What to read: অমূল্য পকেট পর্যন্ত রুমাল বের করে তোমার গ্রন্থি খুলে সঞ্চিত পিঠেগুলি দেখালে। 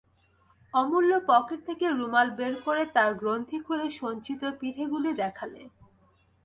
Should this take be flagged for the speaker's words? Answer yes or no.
yes